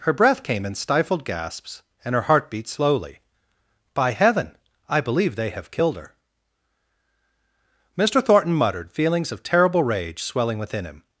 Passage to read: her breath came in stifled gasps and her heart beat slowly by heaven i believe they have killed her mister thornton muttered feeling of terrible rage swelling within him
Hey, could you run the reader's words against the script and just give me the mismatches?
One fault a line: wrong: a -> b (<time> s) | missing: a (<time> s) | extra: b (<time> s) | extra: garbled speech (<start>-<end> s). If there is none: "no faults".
wrong: feeling -> feelings (8.9 s)